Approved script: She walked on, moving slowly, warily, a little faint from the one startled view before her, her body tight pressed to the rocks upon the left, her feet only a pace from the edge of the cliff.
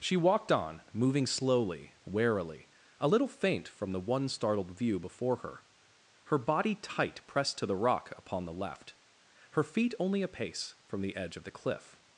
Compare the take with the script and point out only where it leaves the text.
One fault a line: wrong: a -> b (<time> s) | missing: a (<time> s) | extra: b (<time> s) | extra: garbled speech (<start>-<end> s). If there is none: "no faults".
wrong: rocks -> rock (7.7 s)